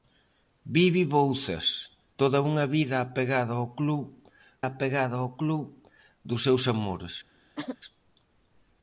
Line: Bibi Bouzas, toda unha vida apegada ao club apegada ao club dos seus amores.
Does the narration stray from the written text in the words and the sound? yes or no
yes